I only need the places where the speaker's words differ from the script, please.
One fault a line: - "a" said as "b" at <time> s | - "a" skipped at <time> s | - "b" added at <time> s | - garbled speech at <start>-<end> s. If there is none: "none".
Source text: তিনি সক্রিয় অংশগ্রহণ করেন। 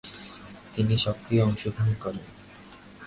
none